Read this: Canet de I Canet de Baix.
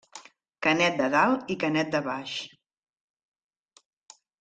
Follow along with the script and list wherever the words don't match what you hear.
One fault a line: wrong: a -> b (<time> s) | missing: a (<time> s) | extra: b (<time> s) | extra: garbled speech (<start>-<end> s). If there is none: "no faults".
extra: Dalt (1.1 s)